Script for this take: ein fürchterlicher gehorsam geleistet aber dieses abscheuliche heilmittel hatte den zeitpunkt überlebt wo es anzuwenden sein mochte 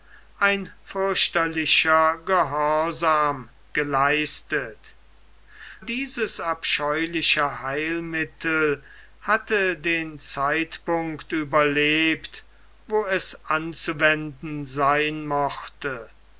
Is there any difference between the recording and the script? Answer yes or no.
yes